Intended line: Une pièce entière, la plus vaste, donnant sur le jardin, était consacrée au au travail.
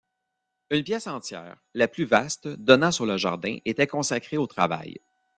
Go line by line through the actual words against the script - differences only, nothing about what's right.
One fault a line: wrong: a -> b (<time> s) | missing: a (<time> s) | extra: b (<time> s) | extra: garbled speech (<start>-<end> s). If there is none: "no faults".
missing: au (4.5 s)